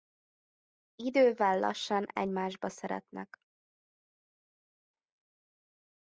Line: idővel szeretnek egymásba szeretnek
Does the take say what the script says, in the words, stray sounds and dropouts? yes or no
no